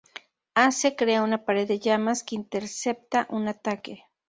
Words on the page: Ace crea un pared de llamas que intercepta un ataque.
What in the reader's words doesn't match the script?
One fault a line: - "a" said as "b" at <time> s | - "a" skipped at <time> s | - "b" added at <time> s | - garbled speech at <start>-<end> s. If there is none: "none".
- "un" said as "una" at 1.2 s